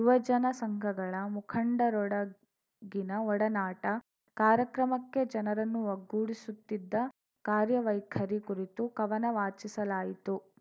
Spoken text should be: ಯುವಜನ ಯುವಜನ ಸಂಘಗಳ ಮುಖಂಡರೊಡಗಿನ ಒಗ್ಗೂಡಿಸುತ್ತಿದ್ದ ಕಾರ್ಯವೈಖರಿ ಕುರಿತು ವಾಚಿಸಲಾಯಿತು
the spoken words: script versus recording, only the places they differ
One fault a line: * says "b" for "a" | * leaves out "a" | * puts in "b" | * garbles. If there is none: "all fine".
* leaves out "ಯುವಜನ"
* puts in "ಒಡನಾಟ ಕಾರ್ಯಕ್ರಮಕ್ಕೆ ಜನರನ್ನು"
* puts in "ಕವನ"